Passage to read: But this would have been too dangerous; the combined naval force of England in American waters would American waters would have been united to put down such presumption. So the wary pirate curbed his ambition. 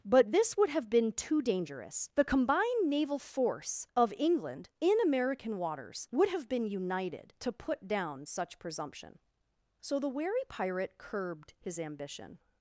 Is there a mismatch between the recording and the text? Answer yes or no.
yes